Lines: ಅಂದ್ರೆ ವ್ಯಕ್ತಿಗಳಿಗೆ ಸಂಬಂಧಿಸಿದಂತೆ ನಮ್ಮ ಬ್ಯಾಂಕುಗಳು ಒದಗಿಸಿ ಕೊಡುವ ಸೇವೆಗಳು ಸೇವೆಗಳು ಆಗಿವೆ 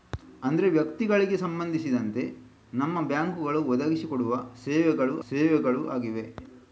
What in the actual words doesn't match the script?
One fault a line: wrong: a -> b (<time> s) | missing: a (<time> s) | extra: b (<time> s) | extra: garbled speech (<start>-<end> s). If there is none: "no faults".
no faults